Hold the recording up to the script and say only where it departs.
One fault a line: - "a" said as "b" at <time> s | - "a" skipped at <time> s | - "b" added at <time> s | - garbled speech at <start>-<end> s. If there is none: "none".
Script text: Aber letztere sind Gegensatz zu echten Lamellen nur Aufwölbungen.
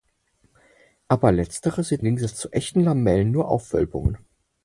none